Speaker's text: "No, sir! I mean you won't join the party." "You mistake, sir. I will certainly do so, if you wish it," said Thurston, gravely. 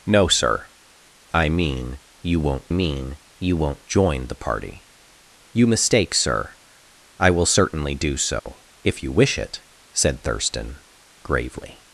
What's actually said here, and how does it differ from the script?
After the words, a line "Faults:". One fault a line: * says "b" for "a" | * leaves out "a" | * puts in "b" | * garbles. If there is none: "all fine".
"No, sir! I mean you won't mean you won't join the party." "You mistake, sir. I will certainly do so, if you wish it," said Thurston, gravely.
Faults:
* puts in "mean you won't"